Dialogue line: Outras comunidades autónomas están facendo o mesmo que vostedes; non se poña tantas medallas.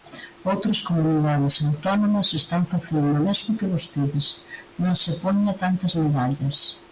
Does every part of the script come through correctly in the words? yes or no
yes